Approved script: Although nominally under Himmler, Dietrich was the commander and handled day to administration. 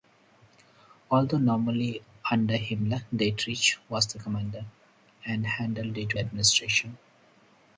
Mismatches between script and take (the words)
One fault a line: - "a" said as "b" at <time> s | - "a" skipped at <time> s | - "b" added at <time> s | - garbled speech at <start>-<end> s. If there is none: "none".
none